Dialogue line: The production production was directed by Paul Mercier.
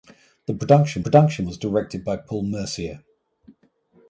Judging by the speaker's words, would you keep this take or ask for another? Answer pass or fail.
pass